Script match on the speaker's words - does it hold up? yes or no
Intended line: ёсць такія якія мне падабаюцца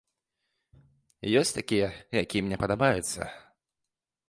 yes